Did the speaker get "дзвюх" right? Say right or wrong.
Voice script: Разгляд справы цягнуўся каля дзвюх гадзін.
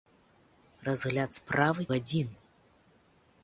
wrong